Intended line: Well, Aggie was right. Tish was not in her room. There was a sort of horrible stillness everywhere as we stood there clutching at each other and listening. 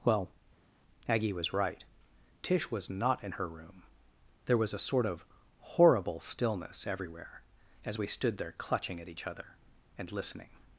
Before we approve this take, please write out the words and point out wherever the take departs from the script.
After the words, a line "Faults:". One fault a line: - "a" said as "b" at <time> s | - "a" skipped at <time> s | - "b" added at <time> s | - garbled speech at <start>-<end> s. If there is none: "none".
Well, Aggie was right. Tish was not in her room. There was a sort of horrible stillness everywhere as we stood there clutching at each other and listening.
Faults:
none